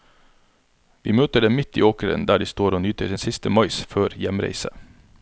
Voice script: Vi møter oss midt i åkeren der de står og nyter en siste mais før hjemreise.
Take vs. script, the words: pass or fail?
fail